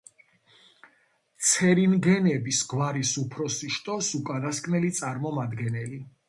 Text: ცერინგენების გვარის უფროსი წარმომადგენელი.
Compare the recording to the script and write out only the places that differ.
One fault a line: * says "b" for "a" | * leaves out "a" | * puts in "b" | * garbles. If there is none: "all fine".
* puts in "შტოს უკანასკნელი"